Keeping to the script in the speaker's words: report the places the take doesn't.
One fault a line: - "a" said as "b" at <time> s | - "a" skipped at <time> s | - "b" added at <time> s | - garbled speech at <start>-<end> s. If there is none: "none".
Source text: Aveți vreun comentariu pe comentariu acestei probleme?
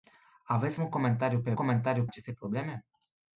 none